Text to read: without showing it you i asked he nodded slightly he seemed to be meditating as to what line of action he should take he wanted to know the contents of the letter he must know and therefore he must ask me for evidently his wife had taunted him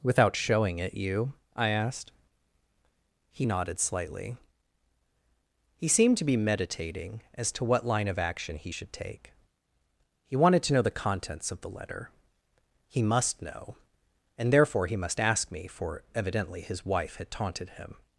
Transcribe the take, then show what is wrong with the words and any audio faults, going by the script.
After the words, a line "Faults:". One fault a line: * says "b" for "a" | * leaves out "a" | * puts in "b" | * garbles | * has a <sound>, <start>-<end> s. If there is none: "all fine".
without showing it you i asked he nodded slightly he seemed to be meditating as to what line of action he should take he wanted to know the contents of the letter he must know and therefore he must ask me for evidently his wife had taunted him
Faults:
all fine